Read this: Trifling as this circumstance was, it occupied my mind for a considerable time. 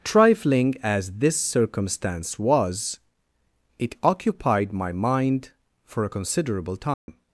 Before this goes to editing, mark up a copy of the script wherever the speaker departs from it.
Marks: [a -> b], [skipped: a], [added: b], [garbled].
Trifling as this circumstance was, it occupied my mind for a considerable time.